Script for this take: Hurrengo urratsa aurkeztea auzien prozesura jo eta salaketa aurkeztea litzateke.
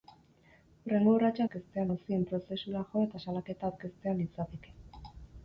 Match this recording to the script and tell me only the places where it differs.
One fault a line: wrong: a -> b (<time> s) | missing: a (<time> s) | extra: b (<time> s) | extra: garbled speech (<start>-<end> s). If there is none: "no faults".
no faults